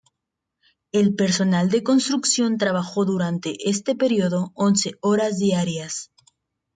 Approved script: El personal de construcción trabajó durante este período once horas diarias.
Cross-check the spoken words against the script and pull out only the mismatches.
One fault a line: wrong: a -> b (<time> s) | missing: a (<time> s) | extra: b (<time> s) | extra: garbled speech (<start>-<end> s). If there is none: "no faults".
no faults